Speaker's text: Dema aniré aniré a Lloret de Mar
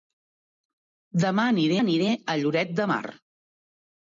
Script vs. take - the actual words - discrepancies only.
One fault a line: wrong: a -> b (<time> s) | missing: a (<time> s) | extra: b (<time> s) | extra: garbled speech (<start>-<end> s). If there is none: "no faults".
no faults